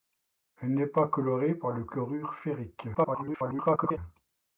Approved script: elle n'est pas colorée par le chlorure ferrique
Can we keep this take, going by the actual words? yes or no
no